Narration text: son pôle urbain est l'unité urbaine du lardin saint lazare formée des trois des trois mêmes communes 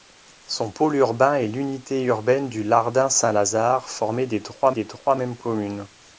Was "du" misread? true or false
false